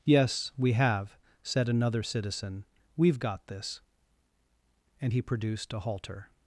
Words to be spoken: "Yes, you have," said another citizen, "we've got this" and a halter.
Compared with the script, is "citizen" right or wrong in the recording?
right